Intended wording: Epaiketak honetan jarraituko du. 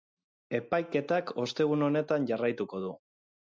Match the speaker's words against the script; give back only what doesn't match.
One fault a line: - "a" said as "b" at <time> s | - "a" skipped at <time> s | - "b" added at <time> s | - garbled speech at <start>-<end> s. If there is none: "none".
- "ostegun" added at 1.4 s